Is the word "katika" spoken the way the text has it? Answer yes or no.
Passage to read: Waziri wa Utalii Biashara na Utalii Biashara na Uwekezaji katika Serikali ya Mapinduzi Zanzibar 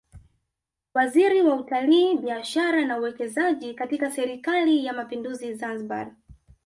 yes